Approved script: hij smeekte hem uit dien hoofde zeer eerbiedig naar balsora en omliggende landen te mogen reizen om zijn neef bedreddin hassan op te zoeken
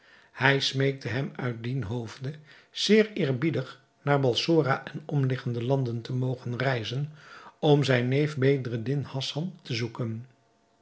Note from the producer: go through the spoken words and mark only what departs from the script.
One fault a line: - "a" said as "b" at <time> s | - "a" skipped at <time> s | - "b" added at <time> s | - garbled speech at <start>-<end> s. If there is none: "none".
- "op" skipped at 9.6 s